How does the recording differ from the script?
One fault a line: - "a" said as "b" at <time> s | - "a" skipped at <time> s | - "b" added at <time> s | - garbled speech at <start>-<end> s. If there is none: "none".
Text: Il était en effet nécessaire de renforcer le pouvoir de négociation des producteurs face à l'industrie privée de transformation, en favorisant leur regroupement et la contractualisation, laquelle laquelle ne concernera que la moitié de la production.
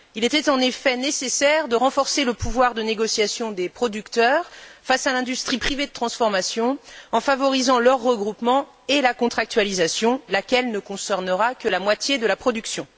- "laquelle" skipped at 10.7 s